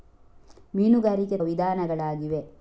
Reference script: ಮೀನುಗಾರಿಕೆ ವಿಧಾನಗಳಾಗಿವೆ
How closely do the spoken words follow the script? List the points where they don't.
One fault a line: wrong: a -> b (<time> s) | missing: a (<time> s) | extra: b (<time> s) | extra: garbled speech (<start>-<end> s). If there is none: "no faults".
no faults